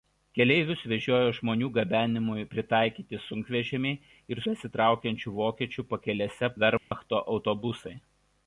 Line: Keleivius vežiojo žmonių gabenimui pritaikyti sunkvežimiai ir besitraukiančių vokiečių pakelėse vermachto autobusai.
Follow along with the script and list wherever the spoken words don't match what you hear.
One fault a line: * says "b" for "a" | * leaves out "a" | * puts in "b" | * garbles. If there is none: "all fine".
all fine